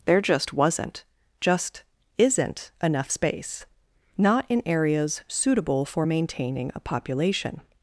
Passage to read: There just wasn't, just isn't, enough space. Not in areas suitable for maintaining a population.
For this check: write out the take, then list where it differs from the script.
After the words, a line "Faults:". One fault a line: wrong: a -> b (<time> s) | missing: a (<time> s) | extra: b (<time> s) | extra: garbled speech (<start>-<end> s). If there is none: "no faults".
There just wasn't, just isn't, enough space. Not in areas suitable for maintaining a population.
Faults:
no faults